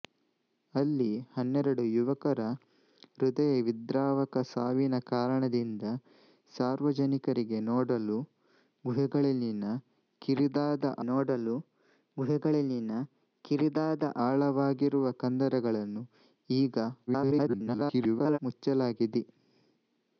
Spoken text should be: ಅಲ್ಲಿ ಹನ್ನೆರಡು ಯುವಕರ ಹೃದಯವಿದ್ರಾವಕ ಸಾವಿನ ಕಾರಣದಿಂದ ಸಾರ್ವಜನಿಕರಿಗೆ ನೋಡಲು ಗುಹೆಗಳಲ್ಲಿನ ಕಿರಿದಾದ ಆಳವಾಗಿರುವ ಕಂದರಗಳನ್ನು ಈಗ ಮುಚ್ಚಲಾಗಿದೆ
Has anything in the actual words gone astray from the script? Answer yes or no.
yes